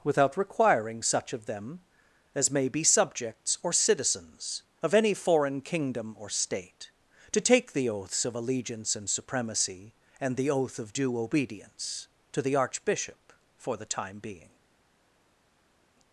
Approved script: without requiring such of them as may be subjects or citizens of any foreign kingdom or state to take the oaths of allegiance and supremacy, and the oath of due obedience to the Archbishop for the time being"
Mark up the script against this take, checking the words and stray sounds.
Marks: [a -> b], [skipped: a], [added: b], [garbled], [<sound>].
without requiring such of them as may be subjects or citizens of any foreign kingdom or state to take the oaths of allegiance and supremacy, and the oath of due obedience to the Archbishop for the time being"